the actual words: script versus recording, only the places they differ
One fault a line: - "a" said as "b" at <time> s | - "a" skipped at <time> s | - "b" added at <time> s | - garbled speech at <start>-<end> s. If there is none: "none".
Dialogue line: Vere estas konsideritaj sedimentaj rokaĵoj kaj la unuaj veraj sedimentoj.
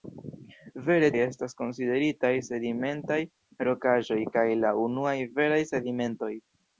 none